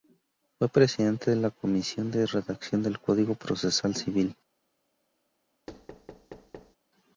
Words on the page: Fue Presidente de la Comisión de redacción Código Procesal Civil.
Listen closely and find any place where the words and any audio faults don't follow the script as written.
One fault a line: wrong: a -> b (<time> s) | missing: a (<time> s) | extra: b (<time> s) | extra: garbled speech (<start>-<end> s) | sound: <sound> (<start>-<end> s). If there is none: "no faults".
extra: del (2.8 s)
sound: thud (5.7-6.8 s)